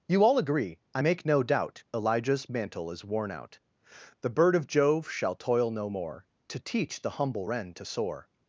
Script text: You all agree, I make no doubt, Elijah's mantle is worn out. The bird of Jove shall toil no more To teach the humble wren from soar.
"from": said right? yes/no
no